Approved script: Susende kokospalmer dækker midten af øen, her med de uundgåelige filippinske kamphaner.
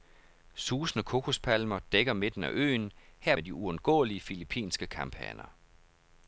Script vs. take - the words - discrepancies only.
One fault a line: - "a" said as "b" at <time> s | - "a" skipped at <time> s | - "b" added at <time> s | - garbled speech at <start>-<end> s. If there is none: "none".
none